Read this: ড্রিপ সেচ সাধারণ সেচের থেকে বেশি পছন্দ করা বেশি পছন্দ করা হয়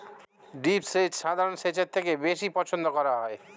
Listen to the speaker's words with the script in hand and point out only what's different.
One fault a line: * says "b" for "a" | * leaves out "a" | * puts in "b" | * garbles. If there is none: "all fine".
* leaves out "বেশি পছন্দ করা"